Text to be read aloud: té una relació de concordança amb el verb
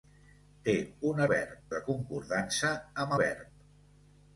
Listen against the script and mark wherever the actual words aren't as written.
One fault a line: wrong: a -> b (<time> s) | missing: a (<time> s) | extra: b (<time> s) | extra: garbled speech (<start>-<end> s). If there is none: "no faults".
wrong: relació -> verb (1.3 s)
missing: el (3.2 s)